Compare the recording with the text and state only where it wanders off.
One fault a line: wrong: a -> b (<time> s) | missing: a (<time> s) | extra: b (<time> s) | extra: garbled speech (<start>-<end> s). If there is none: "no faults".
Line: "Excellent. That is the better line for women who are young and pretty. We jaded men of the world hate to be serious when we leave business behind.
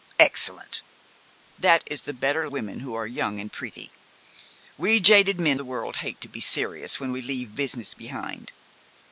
missing: line for (2.5 s)
missing: of (5.6 s)